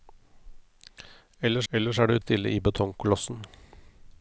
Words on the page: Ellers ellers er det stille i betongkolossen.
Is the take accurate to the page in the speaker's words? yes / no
yes